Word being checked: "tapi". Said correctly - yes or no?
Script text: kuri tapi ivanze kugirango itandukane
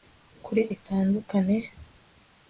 no